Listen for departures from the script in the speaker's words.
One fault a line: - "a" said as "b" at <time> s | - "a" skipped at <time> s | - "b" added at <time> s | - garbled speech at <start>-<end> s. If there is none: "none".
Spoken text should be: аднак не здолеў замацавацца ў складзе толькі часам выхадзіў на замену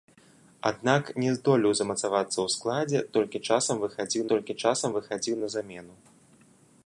- "толькі часам выхадзіў" added at 4.3 s